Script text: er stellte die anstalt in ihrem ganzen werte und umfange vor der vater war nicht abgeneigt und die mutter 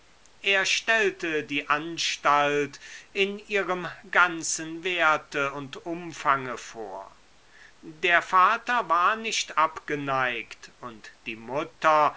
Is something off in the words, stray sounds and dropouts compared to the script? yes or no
no